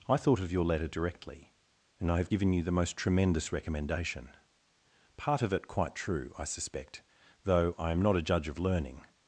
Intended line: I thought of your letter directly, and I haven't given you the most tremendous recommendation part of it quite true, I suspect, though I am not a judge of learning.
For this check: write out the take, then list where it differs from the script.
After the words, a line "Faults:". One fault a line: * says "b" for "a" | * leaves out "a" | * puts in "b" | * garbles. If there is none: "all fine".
I thought of your letter directly, and I have given you the most tremendous recommendation part of it quite true, I suspect, though I am not a judge of learning.
Faults:
* says "have" for "haven't"